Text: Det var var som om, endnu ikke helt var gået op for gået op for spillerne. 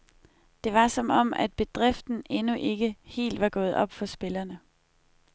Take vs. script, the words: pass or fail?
fail